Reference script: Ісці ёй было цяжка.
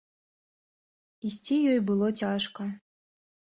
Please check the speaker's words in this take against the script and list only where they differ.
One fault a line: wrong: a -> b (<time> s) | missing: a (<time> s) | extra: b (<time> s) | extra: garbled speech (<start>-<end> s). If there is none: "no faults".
no faults